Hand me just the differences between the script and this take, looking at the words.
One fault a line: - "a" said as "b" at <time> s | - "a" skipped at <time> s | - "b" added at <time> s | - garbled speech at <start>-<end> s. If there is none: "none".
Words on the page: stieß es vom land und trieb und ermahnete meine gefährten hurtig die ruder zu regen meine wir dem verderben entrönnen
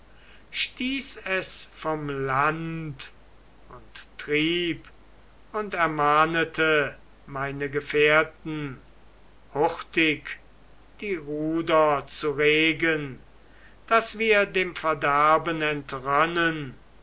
- "meine" said as "daß" at 13.8 s